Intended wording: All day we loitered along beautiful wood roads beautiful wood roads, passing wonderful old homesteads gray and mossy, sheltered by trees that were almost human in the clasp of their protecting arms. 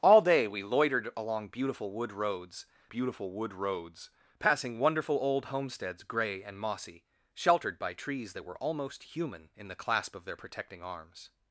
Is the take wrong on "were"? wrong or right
right